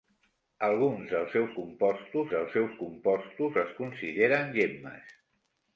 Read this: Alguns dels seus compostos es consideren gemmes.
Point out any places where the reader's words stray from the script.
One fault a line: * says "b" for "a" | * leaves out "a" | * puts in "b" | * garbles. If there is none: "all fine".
* puts in "dels seus compostos"